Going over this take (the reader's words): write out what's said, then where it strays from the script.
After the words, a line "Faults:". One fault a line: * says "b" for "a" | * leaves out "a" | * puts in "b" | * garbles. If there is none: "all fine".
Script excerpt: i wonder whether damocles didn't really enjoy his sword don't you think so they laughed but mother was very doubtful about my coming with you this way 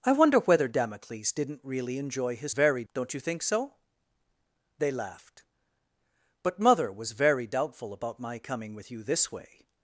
i wonder whether damocles didn't really enjoy his very don't you think so they laughed but mother was very doubtful about my coming with you this way
Faults:
* says "very" for "sword"